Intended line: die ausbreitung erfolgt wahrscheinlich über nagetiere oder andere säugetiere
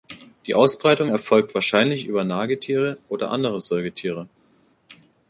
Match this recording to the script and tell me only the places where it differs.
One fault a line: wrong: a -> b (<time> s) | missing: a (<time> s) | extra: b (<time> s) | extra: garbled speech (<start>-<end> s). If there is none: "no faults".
no faults